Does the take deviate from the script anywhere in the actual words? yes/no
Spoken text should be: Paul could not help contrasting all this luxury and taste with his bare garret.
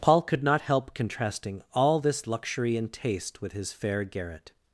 yes